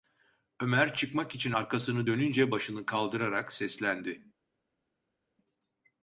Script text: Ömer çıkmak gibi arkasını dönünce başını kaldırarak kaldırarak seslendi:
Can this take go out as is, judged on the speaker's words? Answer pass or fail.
fail